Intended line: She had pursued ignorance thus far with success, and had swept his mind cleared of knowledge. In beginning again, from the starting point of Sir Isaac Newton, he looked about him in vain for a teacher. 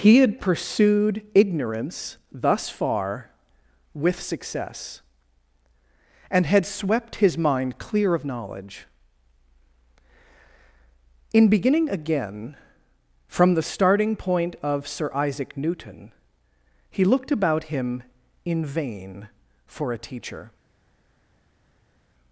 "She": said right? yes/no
no